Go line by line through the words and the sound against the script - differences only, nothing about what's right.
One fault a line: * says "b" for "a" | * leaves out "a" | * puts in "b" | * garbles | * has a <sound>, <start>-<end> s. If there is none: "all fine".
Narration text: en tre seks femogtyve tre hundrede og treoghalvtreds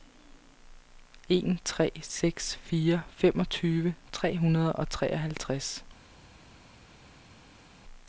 * puts in "fire"